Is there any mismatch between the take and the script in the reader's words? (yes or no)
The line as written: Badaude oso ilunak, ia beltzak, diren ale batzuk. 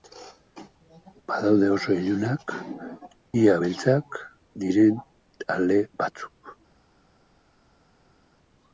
no